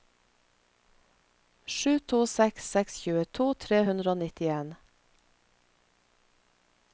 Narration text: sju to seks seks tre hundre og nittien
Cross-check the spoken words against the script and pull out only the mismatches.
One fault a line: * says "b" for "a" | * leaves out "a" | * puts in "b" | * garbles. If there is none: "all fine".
* puts in "tjueto"